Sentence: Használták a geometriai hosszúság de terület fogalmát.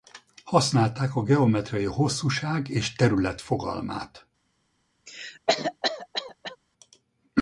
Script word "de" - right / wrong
wrong